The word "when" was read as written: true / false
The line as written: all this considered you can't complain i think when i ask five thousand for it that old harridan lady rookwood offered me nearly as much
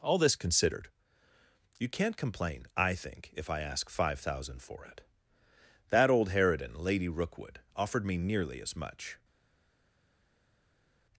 false